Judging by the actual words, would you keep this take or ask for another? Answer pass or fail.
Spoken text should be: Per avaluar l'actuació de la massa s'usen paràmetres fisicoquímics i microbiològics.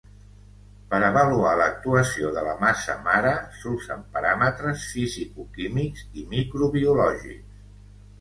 fail